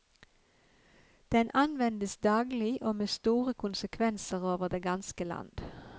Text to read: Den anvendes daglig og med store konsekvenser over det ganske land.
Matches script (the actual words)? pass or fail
pass